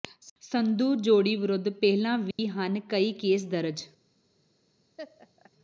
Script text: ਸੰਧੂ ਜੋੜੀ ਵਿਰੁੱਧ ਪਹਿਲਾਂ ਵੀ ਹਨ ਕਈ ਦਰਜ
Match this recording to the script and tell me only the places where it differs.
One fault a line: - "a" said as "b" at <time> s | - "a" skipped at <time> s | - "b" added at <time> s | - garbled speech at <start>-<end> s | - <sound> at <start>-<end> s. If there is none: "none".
- dropout at 2.3-2.4 s
- "ਕੇਸ" added at 3.1 s
- laugh at 5.0-5.5 s